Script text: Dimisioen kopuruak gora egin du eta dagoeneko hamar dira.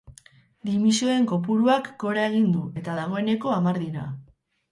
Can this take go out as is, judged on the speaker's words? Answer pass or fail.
pass